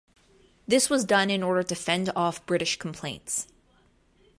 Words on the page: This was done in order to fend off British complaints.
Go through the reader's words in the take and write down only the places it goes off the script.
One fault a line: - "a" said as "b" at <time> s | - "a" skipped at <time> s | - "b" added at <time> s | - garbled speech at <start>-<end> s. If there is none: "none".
none